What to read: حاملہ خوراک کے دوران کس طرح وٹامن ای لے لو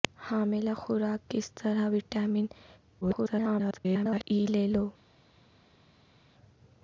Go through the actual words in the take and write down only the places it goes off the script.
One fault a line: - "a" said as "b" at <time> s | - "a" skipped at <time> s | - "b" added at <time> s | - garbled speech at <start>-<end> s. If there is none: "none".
- "کے دوران" skipped at 1.3 s
- garbled speech at 3.0-4.2 s